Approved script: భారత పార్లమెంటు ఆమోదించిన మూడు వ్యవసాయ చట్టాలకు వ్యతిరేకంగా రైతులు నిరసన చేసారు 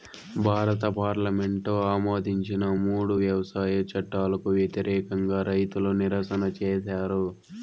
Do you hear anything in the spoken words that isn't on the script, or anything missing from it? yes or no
no